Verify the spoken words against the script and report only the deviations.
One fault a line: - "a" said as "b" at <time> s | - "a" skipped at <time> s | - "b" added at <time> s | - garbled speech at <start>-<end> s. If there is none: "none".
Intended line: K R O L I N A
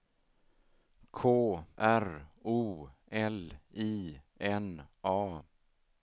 none